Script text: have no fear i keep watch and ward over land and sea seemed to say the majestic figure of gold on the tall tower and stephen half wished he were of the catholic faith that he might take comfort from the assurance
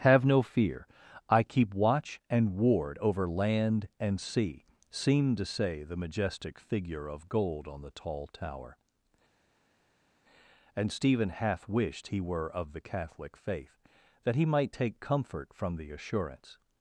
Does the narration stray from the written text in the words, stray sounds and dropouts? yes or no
no